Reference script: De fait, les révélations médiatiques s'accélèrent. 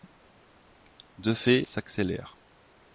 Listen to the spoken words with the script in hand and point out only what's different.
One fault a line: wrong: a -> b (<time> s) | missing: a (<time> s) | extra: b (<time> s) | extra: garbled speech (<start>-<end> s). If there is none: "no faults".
missing: les révélations médiatiques (1.6 s)